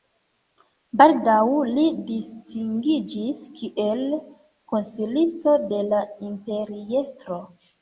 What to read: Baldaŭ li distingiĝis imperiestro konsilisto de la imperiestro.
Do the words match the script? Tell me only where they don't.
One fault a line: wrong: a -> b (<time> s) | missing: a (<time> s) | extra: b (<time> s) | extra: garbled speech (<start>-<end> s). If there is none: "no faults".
wrong: imperiestro -> kiel (3.6 s)